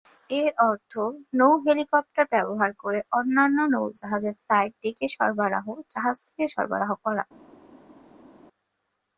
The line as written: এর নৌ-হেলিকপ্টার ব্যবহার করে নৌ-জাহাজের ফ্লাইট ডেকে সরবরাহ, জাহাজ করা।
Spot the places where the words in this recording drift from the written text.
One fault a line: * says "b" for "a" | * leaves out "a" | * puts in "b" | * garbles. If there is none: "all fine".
* puts in "অর্থ"
* puts in "অন্যান্য"
* puts in "থেকে সরবরাহ"